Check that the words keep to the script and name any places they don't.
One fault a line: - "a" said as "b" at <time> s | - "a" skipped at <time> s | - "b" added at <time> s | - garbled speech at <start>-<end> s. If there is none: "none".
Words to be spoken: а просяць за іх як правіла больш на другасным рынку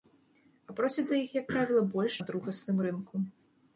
none